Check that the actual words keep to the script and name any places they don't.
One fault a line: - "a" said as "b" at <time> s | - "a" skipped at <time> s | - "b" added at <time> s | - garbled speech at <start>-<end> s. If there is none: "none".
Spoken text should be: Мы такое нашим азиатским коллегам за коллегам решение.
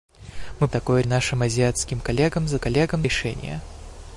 none